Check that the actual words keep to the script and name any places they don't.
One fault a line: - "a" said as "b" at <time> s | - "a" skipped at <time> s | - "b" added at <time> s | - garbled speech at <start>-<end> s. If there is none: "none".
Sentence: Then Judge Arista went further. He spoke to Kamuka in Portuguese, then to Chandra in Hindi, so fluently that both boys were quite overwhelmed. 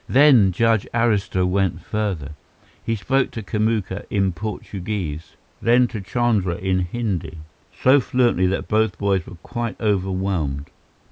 none